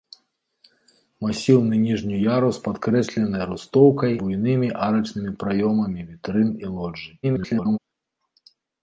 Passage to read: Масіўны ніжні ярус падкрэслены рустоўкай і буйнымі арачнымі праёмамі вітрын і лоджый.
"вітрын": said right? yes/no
yes